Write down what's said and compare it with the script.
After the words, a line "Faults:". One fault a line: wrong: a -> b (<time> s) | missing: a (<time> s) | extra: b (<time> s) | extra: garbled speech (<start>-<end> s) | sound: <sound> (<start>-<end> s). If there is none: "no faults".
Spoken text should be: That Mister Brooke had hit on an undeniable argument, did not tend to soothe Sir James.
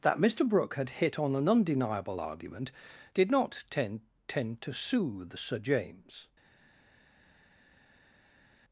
That Mister Brooke had hit on an undeniable argument, did not tend tend to soothe Sir James.
Faults:
extra: tend (4.3 s)